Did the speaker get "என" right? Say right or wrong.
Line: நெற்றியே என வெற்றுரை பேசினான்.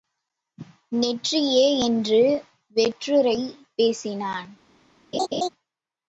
wrong